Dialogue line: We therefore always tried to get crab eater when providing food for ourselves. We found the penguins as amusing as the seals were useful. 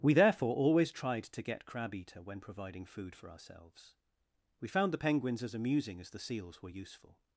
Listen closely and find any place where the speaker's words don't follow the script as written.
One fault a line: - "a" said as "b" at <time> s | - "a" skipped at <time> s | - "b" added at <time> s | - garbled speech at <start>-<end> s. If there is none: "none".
none